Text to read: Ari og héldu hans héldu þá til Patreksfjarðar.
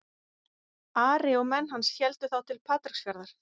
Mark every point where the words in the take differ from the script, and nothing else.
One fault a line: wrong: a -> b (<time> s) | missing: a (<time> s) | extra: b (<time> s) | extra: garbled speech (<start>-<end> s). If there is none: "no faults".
wrong: héldu -> menn (1.5 s)